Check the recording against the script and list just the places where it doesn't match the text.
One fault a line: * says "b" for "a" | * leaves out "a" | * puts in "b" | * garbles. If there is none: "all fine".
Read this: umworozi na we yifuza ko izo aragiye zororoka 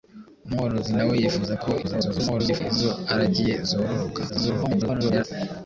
* garbles
* garbles